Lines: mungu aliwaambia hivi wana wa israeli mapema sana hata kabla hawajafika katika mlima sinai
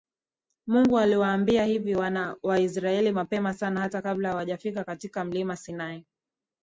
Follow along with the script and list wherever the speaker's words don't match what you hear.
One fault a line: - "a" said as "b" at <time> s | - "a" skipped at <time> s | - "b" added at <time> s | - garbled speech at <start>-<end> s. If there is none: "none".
none